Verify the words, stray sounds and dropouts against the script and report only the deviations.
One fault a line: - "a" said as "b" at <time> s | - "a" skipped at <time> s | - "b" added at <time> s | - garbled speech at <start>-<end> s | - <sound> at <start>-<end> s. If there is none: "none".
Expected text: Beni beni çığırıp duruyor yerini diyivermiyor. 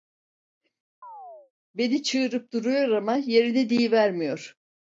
- chirp at 1.0-1.5 s
- "beni" skipped at 2.0 s
- "ama" added at 2.9 s